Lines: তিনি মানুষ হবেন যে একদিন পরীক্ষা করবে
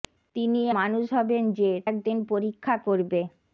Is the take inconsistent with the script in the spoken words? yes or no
no